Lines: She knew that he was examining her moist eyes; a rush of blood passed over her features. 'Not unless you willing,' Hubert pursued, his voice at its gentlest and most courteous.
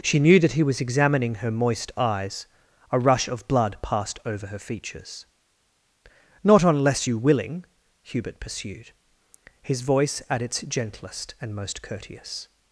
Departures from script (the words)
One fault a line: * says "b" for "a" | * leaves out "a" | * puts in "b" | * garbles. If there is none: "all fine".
all fine